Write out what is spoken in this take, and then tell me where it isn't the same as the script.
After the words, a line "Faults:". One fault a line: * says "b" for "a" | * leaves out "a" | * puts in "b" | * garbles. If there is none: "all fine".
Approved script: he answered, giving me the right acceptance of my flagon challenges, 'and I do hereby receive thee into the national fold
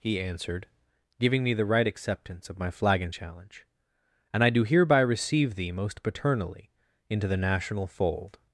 he answered, giving me the right acceptance of my flagon challenge, 'and I do hereby receive thee most paternally into the national fold
Faults:
* says "challenge" for "challenges"
* puts in "most paternally"